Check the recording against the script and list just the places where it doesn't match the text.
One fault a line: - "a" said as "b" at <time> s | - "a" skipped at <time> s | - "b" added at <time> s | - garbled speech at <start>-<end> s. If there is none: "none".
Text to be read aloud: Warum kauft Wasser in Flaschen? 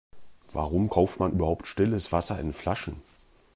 - "man überhaupt stilles" added at 1.2 s